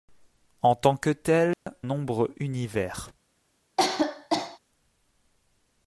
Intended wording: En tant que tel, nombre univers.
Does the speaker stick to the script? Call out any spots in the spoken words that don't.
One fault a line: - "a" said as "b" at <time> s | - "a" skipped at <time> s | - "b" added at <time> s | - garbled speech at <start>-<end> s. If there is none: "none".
none